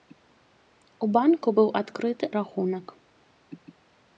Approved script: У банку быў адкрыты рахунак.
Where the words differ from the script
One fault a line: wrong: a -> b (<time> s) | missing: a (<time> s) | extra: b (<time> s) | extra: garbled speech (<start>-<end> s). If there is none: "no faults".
no faults